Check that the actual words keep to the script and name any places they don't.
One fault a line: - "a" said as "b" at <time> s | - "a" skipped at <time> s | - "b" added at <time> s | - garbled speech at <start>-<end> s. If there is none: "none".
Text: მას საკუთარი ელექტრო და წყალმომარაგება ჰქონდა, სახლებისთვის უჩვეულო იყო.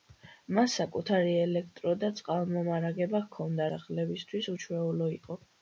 none